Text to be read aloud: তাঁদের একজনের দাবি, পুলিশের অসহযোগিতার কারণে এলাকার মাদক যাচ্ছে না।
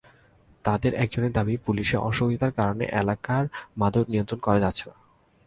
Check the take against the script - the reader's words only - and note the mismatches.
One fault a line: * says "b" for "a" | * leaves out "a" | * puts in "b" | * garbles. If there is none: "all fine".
* puts in "নিয়ন্ত্রণ করা"